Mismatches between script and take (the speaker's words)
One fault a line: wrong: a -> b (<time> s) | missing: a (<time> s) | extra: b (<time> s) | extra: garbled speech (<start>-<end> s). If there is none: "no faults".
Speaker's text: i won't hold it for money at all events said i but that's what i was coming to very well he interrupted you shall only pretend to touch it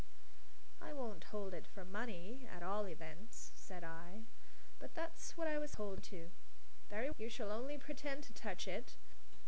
wrong: coming -> hold (5.7 s)
missing: well he interrupted (7.1 s)